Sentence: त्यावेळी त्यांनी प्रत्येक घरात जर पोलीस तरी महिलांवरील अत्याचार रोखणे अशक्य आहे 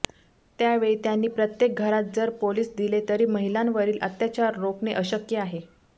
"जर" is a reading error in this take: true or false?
false